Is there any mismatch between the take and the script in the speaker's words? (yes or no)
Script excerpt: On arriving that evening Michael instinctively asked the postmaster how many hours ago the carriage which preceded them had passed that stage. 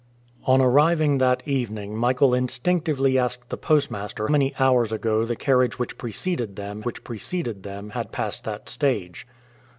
yes